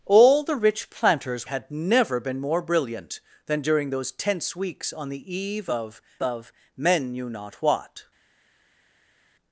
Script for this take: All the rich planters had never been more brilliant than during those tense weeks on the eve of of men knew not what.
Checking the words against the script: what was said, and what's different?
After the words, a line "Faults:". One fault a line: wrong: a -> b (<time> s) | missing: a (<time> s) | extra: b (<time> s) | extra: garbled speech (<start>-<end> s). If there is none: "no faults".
All the rich planters had never been more brilliant than during those tense weeks on the eve of of men knew not what.
Faults:
no faults